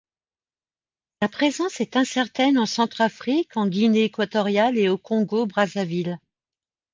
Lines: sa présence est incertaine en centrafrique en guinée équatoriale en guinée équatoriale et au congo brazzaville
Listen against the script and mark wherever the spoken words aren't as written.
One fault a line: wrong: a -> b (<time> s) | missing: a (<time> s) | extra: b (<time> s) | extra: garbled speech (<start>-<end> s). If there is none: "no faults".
missing: en guinée équatoriale (4.8 s)